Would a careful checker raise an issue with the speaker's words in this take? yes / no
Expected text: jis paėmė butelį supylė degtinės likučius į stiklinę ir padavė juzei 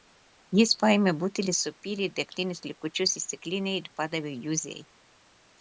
no